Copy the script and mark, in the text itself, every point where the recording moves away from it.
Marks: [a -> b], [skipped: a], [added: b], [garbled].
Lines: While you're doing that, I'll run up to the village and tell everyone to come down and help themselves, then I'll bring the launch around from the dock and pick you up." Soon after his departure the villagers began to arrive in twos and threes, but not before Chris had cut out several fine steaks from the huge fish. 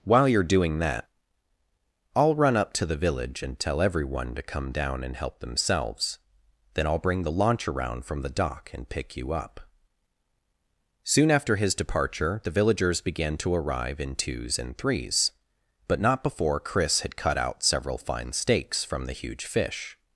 While you're doing that, I'll run up to the village and tell everyone to come down and help themselves, then I'll bring the launch around from the dock and pick you up." Soon after his departure the villagers began to arrive in twos and threes, but not before Chris had cut out several fine steaks from the huge fish.